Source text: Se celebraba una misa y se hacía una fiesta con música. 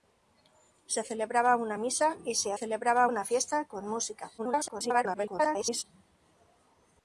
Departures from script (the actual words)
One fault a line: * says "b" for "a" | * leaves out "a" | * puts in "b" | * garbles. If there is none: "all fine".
* says "celebraba" for "hacía"
* garbles